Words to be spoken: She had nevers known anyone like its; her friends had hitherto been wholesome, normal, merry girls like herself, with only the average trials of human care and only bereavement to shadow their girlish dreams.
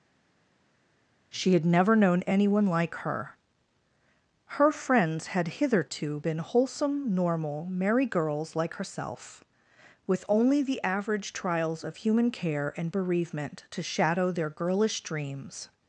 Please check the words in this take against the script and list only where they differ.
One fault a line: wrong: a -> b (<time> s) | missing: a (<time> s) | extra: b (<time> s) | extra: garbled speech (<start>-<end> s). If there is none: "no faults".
wrong: nevers -> never (1.6 s)
wrong: its -> her (2.9 s)
missing: only (12.9 s)